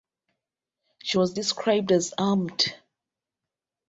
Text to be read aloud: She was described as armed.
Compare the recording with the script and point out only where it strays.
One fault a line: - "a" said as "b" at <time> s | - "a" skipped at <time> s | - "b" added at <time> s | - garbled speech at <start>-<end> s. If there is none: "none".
none